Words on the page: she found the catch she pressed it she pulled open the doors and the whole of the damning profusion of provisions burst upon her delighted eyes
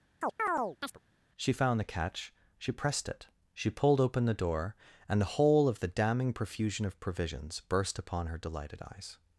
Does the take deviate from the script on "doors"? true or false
true